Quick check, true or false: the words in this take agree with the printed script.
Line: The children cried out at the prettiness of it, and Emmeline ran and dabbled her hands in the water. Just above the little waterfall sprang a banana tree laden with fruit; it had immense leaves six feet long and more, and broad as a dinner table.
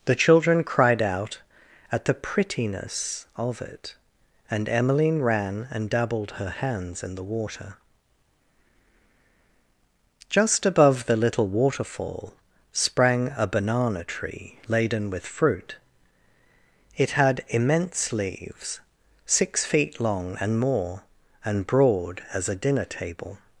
true